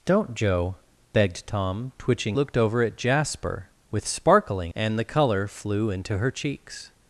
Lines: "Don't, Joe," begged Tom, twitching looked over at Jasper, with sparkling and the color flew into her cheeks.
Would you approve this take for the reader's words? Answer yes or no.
yes